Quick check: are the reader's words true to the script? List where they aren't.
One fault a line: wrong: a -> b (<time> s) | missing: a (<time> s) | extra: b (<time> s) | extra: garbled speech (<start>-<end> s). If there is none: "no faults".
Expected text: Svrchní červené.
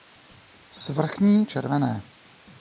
no faults